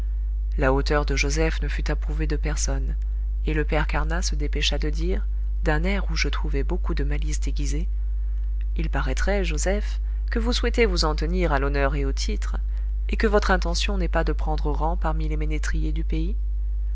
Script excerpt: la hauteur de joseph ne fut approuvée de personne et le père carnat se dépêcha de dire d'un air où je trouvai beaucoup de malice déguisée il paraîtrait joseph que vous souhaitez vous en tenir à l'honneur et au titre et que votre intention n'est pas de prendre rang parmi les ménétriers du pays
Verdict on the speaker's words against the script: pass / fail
pass